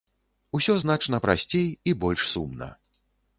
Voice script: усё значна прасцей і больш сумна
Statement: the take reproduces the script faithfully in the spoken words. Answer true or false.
true